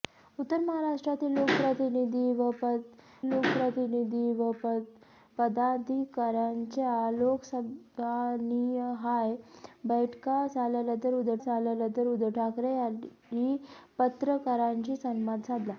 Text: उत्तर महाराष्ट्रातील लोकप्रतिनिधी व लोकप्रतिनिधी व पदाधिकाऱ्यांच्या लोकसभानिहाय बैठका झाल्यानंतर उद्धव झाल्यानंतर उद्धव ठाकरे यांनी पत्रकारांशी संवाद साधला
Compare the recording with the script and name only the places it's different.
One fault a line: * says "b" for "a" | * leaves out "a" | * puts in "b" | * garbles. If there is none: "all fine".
all fine